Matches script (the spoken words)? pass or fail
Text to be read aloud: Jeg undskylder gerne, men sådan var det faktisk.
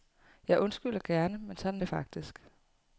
fail